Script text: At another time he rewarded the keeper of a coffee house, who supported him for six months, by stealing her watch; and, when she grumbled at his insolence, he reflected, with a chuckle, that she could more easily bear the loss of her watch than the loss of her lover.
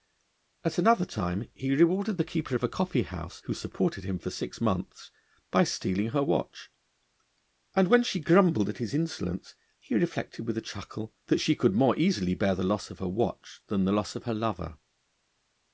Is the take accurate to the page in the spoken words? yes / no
yes